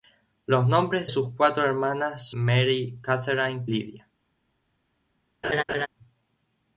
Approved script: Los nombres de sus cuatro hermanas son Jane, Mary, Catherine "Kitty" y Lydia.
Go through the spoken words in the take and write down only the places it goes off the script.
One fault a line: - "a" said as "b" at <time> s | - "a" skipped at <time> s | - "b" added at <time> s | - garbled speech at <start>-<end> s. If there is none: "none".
- "de" skipped at 1.1 s
- "son Jane" skipped at 2.3 s
- "Kitty y" skipped at 3.7 s